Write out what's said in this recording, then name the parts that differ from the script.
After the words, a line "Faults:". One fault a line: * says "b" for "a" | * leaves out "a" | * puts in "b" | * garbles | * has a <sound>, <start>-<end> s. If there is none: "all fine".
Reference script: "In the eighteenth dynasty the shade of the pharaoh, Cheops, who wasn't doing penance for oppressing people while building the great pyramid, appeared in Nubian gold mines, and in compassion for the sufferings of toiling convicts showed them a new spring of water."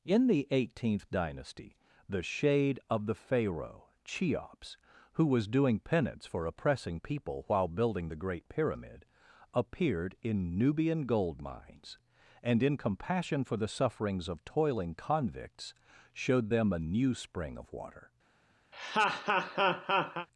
"In the eighteenth dynasty the shade of the pharaoh, Cheops, who was doing penance for oppressing people while building the great pyramid, appeared in Nubian gold mines, and in compassion for the sufferings of toiling convicts showed them a new spring of water."
Faults:
* says "was" for "wasn't"
* has a laugh, 18.7-20.3 s